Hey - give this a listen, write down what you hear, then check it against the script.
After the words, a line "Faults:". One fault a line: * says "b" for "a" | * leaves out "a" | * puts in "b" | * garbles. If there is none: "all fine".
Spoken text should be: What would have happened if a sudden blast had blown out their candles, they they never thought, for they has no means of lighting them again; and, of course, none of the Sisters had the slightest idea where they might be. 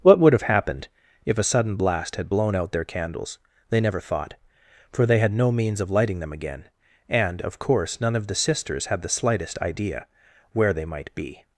What would have happened if a sudden blast had blown out their candles, they never thought, for they had no means of lighting them again; and, of course, none of the Sisters had the slightest idea where they might be.
Faults:
* leaves out "they"
* says "had" for "has"